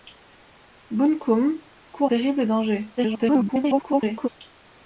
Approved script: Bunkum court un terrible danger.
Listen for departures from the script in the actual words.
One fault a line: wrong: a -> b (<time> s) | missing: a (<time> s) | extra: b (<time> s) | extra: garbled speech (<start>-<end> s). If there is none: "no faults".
missing: un (2.1 s)
extra: garbled speech (3.0-4.3 s)